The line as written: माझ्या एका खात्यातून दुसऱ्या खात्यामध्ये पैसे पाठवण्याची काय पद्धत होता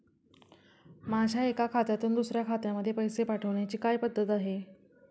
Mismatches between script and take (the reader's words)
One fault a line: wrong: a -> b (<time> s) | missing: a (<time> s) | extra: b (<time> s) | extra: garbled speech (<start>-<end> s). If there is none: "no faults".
wrong: होता -> आहे (4.3 s)